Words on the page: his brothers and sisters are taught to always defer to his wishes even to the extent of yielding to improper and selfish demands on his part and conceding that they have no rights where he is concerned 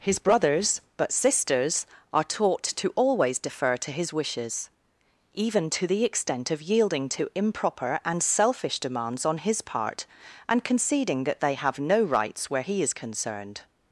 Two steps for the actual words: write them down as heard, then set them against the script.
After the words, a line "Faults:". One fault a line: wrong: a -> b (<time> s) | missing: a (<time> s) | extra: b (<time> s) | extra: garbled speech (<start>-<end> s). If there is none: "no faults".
his brothers but sisters are taught to always defer to his wishes even to the extent of yielding to improper and selfish demands on his part and conceding that they have no rights where he is concerned
Faults:
wrong: and -> but (1.0 s)